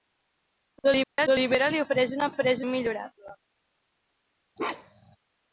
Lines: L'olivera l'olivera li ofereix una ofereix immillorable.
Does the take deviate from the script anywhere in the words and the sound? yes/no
yes